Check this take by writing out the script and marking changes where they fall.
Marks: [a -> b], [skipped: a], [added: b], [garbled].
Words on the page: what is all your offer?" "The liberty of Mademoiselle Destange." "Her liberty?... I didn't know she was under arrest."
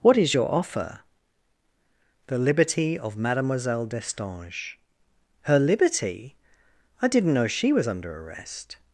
what is [skipped: all] your offer?" "The liberty of Mademoiselle Destange." "Her liberty?... I didn't know she was under arrest."